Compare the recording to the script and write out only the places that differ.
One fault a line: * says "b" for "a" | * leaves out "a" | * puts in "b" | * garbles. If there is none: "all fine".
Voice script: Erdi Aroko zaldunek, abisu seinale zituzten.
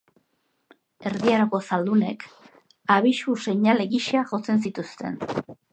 * puts in "gisa jotzen"